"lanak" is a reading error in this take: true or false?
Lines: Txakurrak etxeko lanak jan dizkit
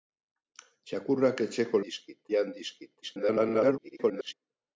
true